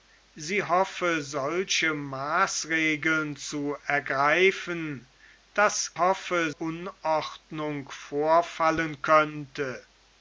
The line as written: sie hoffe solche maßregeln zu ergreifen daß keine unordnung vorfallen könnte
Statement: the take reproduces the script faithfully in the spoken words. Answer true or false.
false